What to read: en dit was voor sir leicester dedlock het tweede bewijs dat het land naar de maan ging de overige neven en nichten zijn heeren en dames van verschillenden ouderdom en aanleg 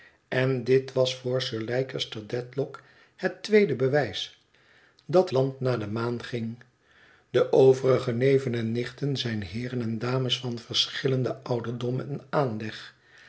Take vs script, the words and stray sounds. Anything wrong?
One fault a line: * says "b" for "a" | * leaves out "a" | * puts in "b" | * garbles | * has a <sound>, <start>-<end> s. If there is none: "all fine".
* leaves out "het"